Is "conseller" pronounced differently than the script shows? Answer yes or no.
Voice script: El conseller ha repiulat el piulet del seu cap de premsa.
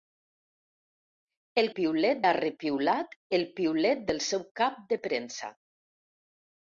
yes